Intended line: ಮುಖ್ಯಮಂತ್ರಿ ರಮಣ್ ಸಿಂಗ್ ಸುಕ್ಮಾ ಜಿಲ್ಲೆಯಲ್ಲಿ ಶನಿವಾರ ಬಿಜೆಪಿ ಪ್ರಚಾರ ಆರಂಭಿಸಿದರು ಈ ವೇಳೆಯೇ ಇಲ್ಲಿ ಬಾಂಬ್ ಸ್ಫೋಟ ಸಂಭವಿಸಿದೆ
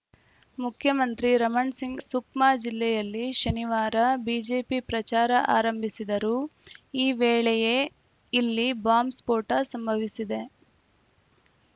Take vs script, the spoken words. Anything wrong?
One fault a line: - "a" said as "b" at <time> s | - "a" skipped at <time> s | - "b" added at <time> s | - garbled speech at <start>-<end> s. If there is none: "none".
none